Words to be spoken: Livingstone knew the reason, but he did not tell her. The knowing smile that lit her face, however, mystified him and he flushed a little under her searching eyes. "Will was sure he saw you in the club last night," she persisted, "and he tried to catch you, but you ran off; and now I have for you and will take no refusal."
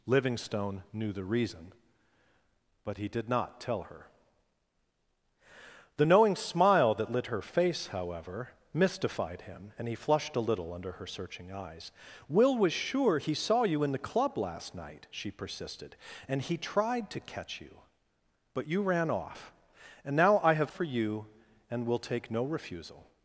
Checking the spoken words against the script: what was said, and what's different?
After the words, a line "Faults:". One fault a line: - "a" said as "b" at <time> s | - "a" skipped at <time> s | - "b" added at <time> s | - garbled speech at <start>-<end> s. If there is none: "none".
Livingstone knew the reason, but he did not tell her. The knowing smile that lit her face, however, mystified him and he flushed a little under her searching eyes. "Will was sure he saw you in the club last night," she persisted, "and he tried to catch you, but you ran off; and now I have for you and will take no refusal."
Faults:
none